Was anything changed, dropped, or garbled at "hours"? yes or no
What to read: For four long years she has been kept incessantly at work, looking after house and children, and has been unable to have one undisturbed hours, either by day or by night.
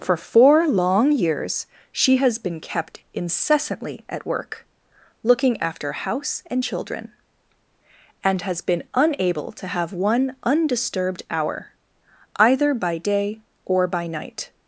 yes